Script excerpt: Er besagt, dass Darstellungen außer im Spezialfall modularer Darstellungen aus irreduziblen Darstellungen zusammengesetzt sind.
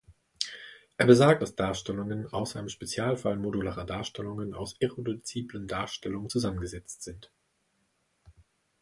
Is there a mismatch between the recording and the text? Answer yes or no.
no